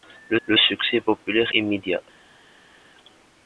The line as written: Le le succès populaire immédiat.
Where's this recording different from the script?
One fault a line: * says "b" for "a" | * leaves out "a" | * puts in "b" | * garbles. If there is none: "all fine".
all fine